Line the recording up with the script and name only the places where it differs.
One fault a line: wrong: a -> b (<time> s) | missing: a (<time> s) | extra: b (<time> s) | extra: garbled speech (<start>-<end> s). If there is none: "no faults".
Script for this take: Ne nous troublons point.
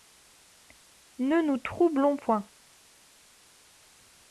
no faults